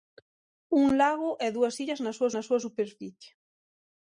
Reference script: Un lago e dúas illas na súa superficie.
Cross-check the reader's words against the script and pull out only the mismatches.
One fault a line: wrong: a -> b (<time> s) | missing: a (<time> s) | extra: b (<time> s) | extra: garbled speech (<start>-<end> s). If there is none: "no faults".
extra: na súa (2.3 s)